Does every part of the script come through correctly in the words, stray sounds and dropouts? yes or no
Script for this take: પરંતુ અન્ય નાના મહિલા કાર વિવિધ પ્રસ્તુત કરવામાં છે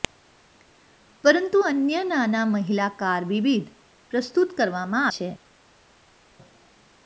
yes